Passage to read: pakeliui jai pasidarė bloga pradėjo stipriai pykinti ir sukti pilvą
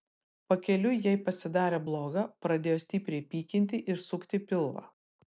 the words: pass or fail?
pass